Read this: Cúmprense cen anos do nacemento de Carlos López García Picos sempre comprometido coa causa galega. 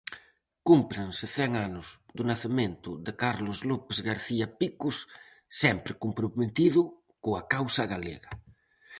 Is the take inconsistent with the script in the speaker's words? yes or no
no